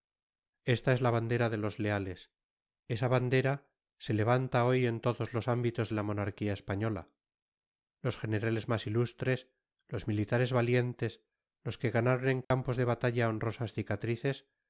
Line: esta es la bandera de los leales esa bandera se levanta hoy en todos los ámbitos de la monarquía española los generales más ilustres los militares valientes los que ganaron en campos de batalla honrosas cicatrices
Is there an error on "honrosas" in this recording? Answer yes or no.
no